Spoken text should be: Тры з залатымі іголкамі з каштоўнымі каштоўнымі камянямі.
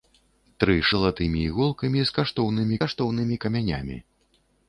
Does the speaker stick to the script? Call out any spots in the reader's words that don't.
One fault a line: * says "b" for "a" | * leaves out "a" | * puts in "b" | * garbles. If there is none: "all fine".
all fine